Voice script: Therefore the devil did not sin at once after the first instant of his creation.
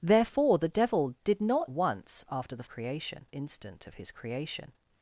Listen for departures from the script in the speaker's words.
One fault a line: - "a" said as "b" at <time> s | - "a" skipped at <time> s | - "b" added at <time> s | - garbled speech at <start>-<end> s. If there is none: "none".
- "sin at" skipped at 1.7 s
- "first" said as "creation" at 2.7 s